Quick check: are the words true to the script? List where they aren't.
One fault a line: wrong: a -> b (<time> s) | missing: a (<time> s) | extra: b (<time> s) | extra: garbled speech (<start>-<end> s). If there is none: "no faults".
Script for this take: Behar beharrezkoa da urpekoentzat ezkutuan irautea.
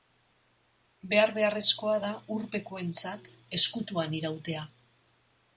no faults